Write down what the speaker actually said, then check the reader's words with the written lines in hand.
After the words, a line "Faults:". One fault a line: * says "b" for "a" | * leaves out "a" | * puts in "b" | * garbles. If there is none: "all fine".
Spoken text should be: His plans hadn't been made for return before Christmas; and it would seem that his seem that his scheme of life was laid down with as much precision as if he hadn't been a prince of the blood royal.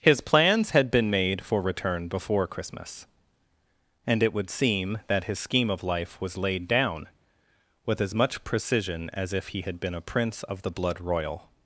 His plans had been made for return before Christmas; and it would seem that his scheme of life was laid down with as much precision as if he had been a prince of the blood royal.
Faults:
* says "had" for "hadn't"
* leaves out "seem that his"
* says "had" for "hadn't"